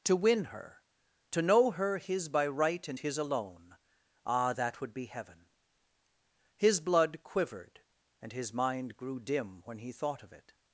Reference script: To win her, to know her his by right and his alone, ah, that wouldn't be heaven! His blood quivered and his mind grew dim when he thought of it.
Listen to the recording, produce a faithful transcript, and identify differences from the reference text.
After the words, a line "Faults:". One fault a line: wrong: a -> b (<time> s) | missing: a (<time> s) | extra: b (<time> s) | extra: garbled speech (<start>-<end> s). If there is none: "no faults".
To win her, to know her his by right and his alone, ah, that would be heaven! His blood quivered and his mind grew dim when he thought of it.
Faults:
wrong: wouldn't -> would (4.8 s)